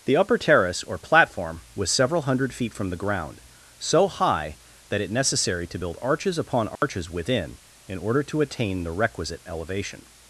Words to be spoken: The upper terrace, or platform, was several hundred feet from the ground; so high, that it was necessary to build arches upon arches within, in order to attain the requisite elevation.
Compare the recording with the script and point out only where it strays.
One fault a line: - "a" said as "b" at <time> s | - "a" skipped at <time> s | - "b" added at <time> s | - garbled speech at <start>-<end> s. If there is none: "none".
- "was" skipped at 5.1 s